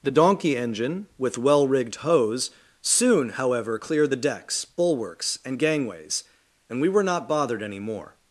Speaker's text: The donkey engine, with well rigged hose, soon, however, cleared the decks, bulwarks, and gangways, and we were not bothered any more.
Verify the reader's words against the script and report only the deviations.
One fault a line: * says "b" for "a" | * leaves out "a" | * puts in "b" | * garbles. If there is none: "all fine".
all fine